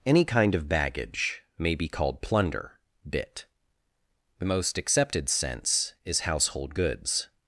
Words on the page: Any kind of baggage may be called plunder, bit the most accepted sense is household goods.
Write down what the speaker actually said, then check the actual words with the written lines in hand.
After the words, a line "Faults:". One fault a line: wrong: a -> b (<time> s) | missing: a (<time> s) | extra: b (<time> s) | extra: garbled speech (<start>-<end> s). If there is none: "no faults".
Any kind of baggage may be called plunder, bit the most accepted sense is household goods.
Faults:
no faults